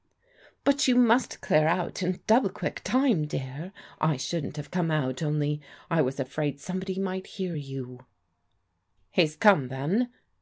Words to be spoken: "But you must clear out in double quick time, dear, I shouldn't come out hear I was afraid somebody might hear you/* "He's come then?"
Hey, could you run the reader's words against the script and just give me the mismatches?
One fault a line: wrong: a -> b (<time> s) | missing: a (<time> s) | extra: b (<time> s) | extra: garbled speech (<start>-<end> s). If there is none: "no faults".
extra: have (4.6 s)
wrong: hear -> only (5.2 s)